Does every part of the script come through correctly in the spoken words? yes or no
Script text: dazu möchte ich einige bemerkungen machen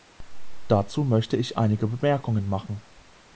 yes